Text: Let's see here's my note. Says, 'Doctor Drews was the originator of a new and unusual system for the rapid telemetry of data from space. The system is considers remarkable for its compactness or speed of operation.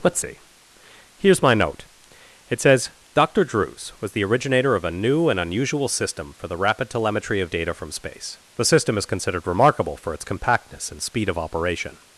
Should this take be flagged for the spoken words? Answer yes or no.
yes